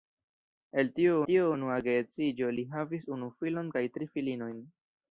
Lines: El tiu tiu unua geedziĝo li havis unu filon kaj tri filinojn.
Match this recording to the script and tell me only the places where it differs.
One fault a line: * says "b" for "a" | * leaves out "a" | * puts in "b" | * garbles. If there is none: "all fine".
all fine